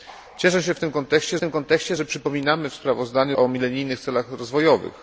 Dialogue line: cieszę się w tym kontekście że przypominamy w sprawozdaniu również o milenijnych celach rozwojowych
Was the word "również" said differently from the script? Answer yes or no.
yes